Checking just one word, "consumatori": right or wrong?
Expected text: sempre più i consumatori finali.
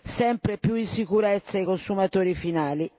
right